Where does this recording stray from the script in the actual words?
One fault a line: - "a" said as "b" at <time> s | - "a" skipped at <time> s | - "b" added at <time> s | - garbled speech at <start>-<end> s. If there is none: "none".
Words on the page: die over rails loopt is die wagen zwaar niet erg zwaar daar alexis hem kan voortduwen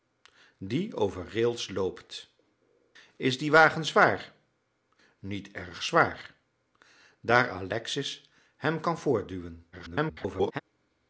- garbled speech at 9.7-10.6 s